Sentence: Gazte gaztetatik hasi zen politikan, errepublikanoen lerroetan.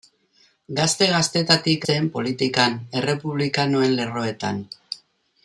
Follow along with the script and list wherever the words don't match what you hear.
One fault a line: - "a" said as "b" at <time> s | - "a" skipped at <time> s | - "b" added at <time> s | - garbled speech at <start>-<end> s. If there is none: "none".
- "hasi" skipped at 1.9 s